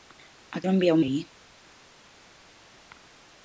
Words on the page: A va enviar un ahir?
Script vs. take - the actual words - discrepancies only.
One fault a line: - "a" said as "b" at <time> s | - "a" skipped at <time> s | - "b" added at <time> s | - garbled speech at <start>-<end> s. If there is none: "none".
none